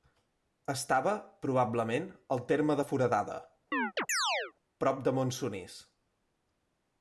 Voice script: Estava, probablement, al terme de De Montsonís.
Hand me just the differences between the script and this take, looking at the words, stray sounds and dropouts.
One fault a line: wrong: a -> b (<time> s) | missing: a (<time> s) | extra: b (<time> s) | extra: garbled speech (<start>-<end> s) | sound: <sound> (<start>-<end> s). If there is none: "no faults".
extra: Foradada prop (2.9 s)
sound: chirp (3.7-4.5 s)